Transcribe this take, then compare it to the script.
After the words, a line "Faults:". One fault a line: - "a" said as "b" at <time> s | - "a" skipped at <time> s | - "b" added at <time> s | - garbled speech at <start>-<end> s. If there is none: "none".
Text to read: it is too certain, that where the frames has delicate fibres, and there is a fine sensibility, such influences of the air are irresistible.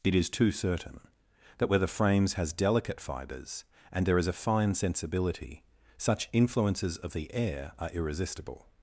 it is too certain, that where the frames has delicate fibres, and there is a fine sensibility, such influences of the air are irresistible.
Faults:
none